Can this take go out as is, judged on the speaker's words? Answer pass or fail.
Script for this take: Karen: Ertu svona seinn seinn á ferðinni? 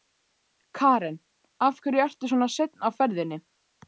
fail